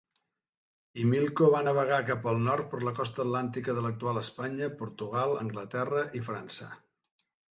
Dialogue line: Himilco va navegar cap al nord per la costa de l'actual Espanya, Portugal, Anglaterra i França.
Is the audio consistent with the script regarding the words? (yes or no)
no